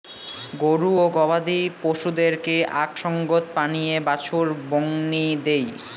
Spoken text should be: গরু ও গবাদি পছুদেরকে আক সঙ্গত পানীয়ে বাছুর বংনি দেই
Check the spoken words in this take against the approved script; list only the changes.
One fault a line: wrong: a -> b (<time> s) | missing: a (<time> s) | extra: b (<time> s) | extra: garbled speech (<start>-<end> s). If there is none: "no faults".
no faults